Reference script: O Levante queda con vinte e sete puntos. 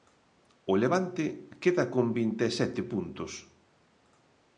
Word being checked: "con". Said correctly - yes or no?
yes